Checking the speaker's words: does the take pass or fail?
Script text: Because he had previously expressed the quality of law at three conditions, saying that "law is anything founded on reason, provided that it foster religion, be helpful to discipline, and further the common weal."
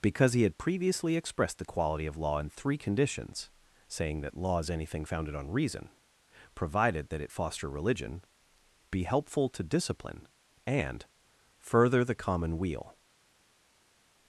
fail